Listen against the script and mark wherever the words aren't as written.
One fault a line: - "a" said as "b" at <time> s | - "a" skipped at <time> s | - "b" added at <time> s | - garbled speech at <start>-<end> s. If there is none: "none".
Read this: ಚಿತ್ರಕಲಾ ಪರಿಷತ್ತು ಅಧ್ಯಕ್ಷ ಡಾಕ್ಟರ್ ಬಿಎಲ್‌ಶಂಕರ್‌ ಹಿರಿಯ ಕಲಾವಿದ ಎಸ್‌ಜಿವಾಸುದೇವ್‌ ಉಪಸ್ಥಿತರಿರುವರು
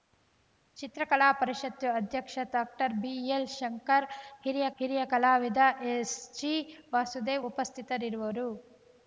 - "ಹಿರಿಯ" added at 4.8 s